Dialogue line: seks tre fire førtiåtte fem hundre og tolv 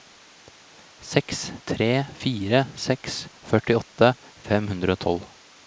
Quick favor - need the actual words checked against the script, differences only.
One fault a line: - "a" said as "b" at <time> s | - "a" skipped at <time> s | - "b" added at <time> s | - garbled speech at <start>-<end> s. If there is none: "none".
- "seks" added at 2.8 s